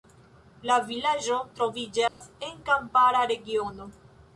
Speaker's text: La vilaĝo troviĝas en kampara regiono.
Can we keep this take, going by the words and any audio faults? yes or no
no